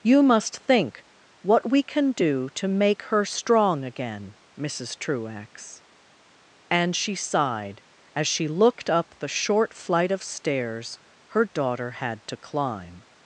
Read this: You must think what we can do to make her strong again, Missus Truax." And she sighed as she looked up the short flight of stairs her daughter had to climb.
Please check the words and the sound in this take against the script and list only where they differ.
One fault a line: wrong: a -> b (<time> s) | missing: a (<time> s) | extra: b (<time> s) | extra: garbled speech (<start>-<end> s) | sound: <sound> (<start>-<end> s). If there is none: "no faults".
no faults